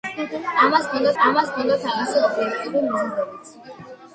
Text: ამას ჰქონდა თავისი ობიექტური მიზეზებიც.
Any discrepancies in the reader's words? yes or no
yes